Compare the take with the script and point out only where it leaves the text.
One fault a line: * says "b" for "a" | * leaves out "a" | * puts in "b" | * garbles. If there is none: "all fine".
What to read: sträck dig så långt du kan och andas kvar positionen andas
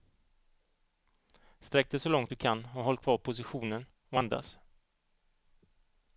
* says "håll" for "andas"
* puts in "och"